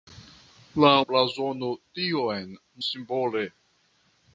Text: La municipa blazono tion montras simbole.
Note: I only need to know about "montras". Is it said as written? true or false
false